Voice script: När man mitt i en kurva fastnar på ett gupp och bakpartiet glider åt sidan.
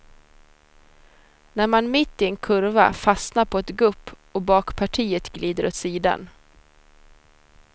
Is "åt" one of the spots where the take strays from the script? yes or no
no